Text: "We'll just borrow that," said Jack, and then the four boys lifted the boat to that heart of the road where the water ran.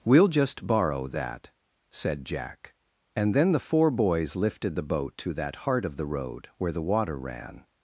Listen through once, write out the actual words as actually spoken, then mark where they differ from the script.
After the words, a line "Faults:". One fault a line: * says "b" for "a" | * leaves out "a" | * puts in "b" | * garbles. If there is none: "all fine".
"We'll just borrow that," said Jack, and then the four boys lifted the boat to that heart of the road where the water ran.
Faults:
all fine